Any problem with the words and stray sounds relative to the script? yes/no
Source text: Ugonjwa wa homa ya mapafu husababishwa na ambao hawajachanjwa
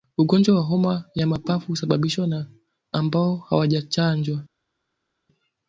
no